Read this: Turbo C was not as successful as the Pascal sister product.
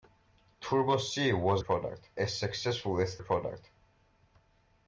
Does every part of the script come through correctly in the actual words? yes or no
no